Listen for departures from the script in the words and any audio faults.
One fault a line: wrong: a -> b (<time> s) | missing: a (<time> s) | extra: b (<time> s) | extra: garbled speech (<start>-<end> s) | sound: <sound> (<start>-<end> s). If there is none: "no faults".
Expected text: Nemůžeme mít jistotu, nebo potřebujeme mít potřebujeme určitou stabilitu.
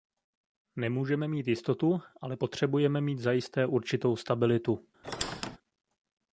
wrong: nebo -> ale (2.2 s)
wrong: potřebujeme -> zajisté (3.2 s)
sound: squeak (5.0-5.6 s)